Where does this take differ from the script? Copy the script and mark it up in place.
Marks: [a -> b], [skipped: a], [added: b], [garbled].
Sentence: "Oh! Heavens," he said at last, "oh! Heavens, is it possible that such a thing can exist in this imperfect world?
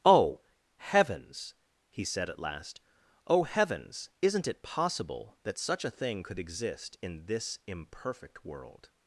"Oh! Heavens," he said at last, "oh! Heavens, [is -> isn't] it possible that such a thing [can -> could] exist in this imperfect world?